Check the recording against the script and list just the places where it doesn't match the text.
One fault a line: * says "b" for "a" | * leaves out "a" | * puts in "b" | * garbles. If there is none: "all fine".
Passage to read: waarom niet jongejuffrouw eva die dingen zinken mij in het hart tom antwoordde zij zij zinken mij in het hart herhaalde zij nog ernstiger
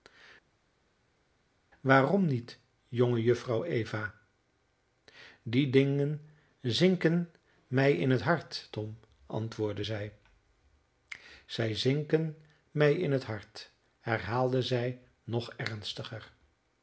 all fine